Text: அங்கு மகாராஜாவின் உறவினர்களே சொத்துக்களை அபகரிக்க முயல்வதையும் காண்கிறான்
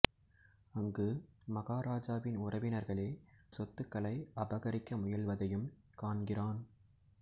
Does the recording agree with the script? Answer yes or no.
yes